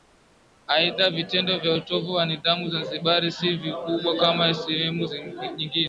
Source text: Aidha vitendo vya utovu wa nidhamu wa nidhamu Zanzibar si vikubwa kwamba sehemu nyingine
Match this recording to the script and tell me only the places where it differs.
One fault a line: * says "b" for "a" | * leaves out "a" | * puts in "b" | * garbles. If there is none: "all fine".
* leaves out "wa nidhamu"
* says "kama" for "kwamba"